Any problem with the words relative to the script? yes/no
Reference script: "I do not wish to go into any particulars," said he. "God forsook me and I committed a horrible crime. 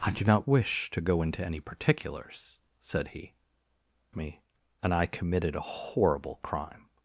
yes